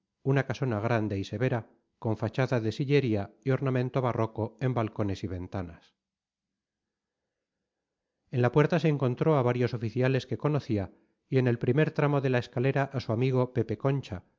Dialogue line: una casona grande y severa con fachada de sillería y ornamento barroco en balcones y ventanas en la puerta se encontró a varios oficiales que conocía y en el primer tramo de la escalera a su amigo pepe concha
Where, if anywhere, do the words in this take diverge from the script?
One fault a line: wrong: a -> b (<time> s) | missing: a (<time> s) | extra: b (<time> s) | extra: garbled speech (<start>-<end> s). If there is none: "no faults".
no faults